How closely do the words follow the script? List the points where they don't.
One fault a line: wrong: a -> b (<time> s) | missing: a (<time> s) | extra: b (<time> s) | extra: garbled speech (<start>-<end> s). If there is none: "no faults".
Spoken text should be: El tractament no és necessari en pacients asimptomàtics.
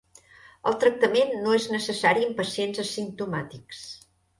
no faults